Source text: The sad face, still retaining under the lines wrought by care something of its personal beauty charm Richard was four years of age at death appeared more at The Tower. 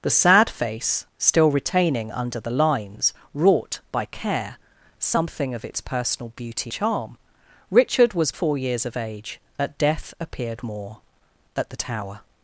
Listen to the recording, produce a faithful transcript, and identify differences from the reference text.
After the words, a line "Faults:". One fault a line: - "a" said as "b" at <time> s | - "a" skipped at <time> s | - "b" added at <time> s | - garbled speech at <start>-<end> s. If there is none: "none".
The sad face, still retaining under the lines wrought by care something of its personal beauty charm Richard was four years of age at death appeared more at The Tower.
Faults:
none